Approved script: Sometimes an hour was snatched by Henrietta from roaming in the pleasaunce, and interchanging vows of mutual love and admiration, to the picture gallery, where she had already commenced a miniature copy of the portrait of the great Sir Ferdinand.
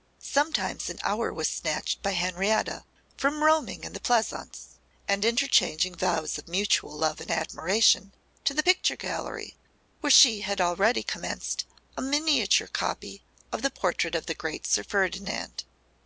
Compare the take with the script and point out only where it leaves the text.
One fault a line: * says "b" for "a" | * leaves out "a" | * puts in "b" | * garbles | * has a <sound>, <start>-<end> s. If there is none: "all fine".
all fine